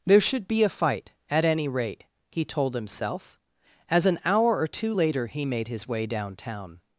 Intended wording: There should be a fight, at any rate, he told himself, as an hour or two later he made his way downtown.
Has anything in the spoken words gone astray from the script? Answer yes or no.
no